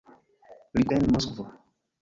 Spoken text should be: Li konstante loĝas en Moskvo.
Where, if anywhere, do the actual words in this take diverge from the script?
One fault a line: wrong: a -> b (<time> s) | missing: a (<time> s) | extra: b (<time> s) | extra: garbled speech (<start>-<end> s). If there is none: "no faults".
missing: konstante loĝas (0.9 s)